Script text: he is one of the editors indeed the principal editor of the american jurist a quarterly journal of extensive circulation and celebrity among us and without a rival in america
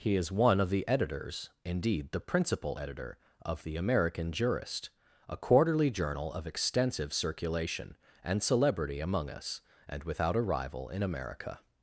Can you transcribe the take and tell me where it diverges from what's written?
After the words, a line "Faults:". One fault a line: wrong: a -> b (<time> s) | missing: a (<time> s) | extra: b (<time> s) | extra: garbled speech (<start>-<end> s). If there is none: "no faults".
he is one of the editors indeed the principal editor of the american jurist a quarterly journal of extensive circulation and celebrity among us and without a rival in america
Faults:
no faults